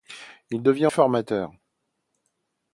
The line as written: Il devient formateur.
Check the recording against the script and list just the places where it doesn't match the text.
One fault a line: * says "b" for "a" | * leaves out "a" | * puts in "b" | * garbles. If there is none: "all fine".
all fine